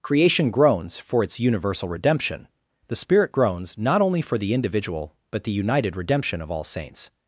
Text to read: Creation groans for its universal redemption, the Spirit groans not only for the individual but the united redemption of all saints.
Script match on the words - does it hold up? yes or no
yes